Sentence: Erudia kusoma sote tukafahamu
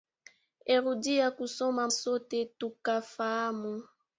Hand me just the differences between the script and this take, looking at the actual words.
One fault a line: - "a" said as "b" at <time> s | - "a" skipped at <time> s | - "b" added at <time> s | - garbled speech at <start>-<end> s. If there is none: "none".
none